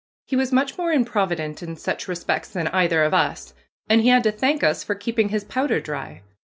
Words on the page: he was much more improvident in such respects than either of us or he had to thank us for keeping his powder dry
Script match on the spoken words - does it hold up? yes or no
no